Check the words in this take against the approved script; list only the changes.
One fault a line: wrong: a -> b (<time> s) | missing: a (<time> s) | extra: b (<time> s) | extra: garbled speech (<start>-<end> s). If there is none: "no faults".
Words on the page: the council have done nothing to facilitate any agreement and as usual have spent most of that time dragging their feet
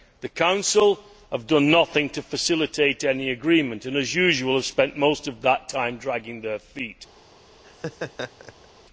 no faults